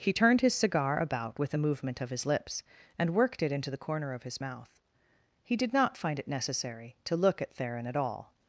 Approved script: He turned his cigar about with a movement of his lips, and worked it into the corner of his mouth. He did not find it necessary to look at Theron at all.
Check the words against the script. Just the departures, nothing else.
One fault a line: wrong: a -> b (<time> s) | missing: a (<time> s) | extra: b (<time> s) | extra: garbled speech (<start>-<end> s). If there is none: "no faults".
no faults